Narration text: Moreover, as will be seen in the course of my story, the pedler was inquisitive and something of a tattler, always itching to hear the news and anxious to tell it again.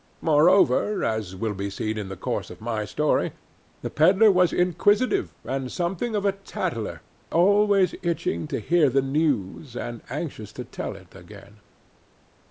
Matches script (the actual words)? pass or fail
pass